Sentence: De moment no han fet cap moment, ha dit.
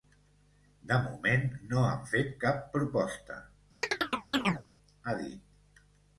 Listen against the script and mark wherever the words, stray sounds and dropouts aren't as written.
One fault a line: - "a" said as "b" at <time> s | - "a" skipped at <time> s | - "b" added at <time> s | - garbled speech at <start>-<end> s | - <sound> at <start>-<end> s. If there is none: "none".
- "moment" said as "proposta" at 2.8 s
- chirp at 3.8-4.7 s